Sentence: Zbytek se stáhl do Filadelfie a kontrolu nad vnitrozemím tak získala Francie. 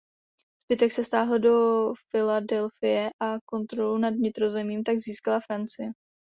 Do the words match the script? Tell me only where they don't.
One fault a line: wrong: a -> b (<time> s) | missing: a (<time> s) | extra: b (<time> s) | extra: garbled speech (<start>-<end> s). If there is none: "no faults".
no faults